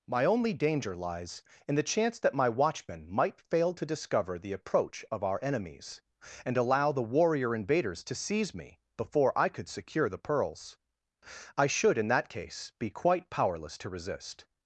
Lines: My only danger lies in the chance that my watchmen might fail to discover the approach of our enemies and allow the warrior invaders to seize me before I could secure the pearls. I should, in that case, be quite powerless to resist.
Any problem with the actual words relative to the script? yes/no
no